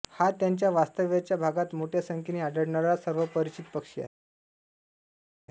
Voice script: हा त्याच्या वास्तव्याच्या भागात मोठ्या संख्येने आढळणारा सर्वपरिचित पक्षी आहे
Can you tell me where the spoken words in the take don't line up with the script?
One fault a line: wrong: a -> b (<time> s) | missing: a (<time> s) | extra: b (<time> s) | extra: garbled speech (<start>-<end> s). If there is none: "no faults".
no faults